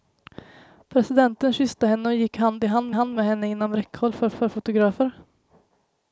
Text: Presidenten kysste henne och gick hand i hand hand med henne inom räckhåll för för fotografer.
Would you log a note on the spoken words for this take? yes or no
no